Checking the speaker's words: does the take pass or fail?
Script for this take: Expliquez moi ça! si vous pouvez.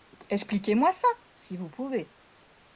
pass